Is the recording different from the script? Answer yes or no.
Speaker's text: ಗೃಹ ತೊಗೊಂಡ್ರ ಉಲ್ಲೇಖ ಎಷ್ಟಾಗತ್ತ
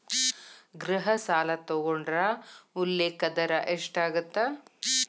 yes